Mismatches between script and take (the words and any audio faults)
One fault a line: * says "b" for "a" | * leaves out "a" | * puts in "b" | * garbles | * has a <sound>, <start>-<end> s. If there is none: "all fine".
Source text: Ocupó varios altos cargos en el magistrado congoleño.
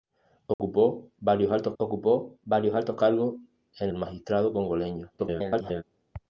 * has a dropout, 0.5-0.6 s
* puts in "ocupó varios altos"
* leaves out "el"
* garbles